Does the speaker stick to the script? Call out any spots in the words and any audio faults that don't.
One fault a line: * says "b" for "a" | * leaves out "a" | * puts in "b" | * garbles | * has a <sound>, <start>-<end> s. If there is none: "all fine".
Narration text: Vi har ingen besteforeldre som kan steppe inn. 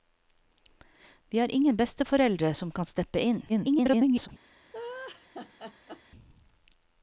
* garbles
* has a laugh, 4.7-6.0 s